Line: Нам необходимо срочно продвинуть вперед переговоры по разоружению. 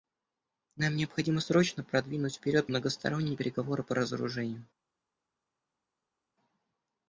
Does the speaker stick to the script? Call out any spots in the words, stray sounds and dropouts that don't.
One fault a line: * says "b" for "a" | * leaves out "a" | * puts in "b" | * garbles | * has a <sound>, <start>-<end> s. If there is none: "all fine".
* puts in "многосторонние"